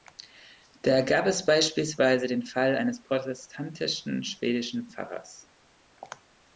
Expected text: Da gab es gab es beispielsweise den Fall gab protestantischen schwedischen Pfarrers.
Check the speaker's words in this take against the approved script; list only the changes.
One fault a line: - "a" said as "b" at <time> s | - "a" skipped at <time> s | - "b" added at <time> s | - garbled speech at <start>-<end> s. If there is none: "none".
- "gab es" skipped at 1.4 s
- "gab" said as "eines" at 2.7 s